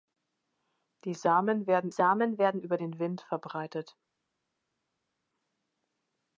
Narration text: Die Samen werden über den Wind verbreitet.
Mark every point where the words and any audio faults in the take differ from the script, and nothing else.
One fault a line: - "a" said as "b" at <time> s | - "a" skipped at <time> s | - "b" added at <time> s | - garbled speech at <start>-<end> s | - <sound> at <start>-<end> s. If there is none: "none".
- "Samen werden" added at 1.9 s